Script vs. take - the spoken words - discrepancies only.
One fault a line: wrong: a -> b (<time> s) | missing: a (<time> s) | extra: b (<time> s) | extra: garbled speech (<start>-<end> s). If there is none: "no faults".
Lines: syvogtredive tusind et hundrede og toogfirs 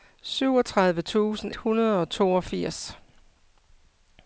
missing: et (1.5 s)